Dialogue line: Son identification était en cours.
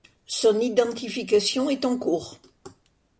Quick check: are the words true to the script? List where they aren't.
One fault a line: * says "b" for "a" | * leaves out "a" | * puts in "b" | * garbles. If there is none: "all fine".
* says "est" for "était"